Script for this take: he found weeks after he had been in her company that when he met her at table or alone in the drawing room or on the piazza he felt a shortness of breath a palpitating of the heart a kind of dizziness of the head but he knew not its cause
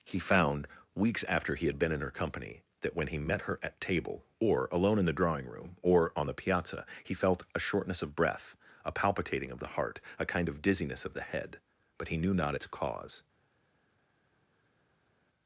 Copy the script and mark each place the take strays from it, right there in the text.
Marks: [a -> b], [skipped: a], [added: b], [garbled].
he found weeks after he had been in her company that when he met her at table or alone in the drawing room or on the piazza he felt a shortness of breath a palpitating of the heart a kind of dizziness of the head but he knew not its cause